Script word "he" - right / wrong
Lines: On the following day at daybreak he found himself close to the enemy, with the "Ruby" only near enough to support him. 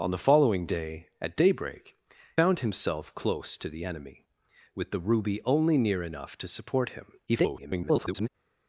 wrong